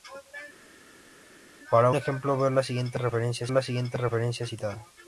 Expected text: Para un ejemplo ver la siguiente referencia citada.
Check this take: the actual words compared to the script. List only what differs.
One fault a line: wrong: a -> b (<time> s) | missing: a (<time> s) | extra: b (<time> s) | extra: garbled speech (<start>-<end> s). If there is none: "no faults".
missing: un (1.9 s)
extra: la siguiente referencia (3.5 s)